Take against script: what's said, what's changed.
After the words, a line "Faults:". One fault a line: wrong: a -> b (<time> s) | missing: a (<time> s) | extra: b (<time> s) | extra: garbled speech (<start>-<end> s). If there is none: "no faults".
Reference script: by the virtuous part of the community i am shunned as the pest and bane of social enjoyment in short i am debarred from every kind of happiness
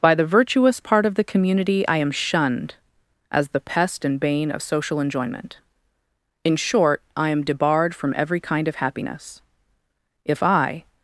by the virtuous part of the community i am shunned as the pest and bane of social enjoyment in short i am debarred from every kind of happiness if i
Faults:
extra: if i (10.2 s)